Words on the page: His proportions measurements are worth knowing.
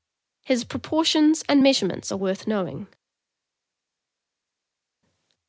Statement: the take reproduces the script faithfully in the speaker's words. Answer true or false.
false